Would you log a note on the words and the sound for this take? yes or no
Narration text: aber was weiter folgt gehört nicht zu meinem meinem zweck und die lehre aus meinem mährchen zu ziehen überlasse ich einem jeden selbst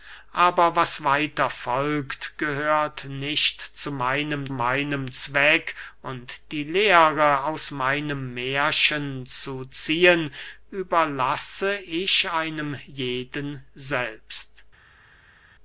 no